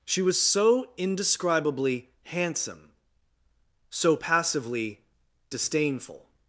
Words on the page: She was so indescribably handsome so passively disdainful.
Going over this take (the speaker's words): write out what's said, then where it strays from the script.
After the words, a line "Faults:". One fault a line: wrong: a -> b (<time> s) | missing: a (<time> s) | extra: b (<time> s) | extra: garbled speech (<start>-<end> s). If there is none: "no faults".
She was so indescribably handsome so passively disdainful.
Faults:
no faults